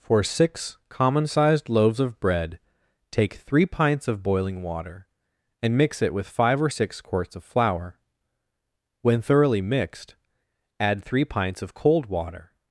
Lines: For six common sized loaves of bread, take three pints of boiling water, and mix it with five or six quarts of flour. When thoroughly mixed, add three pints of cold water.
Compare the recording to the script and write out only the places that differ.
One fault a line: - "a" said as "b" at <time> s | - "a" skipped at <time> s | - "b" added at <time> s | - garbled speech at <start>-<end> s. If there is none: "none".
none